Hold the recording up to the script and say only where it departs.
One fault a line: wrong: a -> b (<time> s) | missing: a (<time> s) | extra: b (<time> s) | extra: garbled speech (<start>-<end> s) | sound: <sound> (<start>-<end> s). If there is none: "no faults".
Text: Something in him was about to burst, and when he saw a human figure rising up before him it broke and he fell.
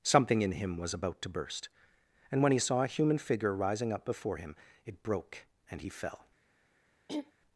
sound: throat clearing (7.1-7.3 s)